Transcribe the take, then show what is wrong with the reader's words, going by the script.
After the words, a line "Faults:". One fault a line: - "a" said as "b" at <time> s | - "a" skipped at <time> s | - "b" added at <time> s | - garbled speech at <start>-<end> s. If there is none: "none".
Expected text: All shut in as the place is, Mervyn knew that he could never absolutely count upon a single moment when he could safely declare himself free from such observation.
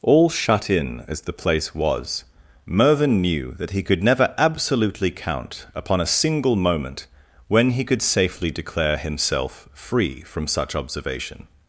All shut in as the place was, Mervyn knew that he could never absolutely count upon a single moment when he could safely declare himself free from such observation.
Faults:
- "is" said as "was" at 1.7 s